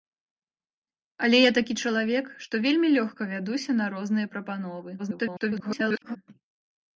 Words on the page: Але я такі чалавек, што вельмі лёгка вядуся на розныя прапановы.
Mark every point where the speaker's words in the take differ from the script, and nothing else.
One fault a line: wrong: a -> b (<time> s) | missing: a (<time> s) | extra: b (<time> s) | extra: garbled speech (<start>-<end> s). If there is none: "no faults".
extra: garbled speech (5.0-6.2 s)